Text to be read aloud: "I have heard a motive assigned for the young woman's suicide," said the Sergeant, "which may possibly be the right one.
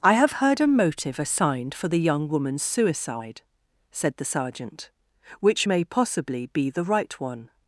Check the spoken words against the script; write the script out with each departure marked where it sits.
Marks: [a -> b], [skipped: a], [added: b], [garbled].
"I have heard a motive assigned for the young woman's suicide," said the Sergeant, "which may possibly be the right one.